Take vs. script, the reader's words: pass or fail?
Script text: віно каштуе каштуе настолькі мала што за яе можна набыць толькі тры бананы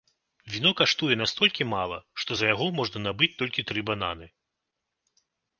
fail